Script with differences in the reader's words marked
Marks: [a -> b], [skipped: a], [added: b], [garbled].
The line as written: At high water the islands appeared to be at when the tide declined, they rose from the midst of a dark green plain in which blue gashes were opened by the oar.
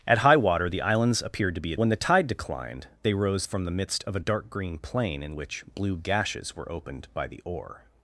At high water the islands appeared to be at when the tide declined, they rose from the midst of a dark green plain in which blue gashes were opened by the oar.